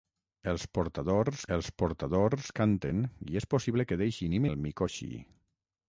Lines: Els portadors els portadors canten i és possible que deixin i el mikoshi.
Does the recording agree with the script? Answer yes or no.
yes